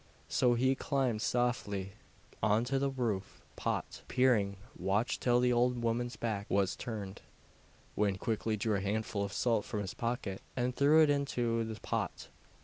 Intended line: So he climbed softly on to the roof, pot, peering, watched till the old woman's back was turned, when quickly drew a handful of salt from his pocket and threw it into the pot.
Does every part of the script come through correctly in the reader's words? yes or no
yes